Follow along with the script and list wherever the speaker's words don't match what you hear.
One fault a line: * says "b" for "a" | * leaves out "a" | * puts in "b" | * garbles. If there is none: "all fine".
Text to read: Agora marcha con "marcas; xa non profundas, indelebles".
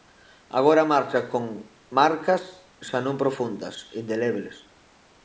all fine